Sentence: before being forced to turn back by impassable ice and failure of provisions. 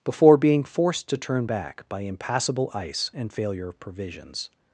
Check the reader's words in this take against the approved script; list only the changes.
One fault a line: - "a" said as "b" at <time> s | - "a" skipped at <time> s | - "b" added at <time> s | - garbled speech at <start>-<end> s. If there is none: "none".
none